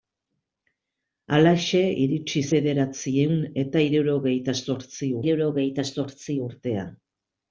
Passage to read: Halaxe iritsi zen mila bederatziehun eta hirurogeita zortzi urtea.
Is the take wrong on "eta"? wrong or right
wrong